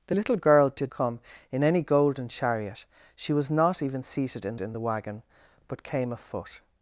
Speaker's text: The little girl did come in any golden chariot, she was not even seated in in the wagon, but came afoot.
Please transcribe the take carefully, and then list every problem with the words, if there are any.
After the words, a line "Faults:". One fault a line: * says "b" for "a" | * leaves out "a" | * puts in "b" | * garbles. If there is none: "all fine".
The little girl did come in any golden chariot, she was not even seated in in the wagon, but came afoot.
Faults:
all fine